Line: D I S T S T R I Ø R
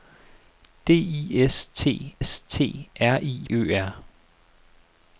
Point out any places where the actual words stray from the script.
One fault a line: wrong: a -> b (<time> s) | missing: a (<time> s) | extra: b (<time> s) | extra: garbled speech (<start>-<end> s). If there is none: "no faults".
no faults